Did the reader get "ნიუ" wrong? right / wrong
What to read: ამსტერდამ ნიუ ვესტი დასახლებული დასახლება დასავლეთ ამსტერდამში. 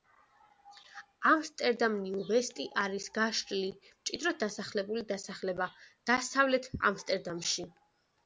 right